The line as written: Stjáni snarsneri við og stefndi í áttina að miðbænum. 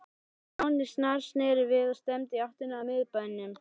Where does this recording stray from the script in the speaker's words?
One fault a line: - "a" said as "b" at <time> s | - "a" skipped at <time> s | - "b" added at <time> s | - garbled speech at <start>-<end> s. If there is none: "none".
none